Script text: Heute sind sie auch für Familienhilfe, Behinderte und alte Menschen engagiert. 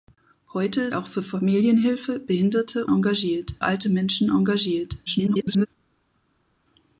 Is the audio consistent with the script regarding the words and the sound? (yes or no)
no